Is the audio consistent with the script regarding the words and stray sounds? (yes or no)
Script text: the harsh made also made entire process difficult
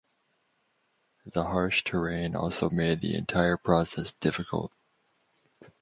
no